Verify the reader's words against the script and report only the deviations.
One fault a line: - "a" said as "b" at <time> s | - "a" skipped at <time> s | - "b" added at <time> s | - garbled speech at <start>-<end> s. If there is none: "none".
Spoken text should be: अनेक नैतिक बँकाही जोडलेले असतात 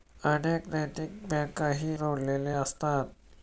none